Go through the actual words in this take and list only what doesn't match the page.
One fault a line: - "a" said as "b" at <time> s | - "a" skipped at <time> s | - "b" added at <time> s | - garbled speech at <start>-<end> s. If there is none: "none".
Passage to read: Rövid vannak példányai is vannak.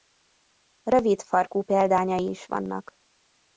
- "vannak" said as "farkú" at 1.2 s